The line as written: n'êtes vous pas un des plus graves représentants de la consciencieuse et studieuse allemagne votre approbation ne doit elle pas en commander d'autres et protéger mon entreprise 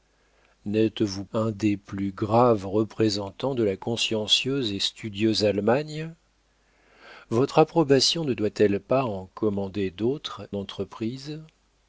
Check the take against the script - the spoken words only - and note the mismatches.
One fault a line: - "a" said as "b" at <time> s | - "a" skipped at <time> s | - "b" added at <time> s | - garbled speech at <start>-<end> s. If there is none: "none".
- "pas" skipped at 1.2 s
- "et protéger mon" skipped at 10.5 s